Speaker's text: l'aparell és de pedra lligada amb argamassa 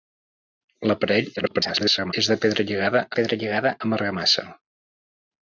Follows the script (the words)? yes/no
no